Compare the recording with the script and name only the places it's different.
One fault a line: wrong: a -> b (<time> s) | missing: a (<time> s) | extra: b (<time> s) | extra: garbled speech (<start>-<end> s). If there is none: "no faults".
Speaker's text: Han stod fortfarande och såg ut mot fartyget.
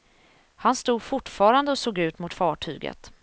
no faults